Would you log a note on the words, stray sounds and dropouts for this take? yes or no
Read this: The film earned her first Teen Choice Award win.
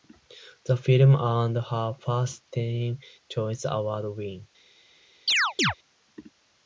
yes